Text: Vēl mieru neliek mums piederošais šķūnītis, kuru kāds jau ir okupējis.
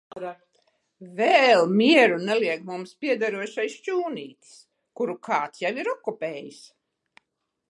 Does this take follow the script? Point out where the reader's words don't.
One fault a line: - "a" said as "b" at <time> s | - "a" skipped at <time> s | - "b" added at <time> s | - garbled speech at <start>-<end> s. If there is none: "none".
none